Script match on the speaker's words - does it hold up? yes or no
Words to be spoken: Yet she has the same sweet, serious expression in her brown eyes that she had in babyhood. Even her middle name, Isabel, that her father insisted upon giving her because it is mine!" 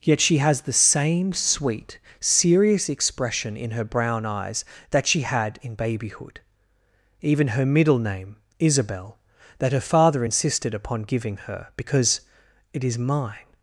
yes